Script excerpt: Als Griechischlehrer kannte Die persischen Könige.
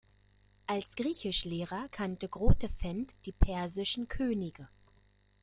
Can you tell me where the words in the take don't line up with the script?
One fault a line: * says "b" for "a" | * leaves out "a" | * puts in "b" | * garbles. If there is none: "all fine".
* puts in "Grotefend"